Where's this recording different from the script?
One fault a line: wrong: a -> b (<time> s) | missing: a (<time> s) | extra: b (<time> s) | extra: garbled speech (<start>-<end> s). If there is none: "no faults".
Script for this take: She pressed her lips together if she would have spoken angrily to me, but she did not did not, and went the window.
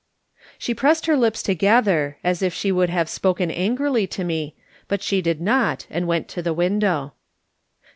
extra: as (2.2 s)
missing: did not (5.8 s)
extra: to (6.3 s)